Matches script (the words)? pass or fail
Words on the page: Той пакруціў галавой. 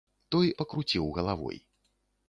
pass